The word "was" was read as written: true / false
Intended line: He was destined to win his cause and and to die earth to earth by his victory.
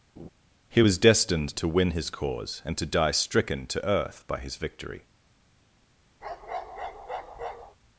true